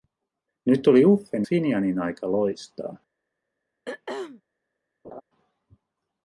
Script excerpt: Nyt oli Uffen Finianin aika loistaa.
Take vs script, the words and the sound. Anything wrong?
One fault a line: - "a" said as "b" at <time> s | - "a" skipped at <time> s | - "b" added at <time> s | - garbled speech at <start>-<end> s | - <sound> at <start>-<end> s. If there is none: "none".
- throat clearing at 3.9-4.4 s
- laugh at 5.0-5.2 s